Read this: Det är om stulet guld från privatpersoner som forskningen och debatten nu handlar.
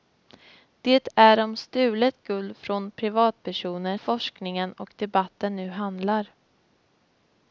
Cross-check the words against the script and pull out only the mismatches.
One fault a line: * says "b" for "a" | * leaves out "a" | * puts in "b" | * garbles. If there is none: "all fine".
* leaves out "som"